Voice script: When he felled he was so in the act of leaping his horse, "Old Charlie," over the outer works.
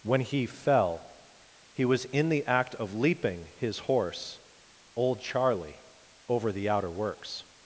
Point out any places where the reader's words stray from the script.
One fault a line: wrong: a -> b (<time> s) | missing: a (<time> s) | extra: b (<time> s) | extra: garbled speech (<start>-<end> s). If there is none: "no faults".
wrong: felled -> fell (0.5 s)
missing: so (2.0 s)